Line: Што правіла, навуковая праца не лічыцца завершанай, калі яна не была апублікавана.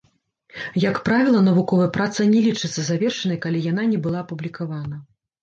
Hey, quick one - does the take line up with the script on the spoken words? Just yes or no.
no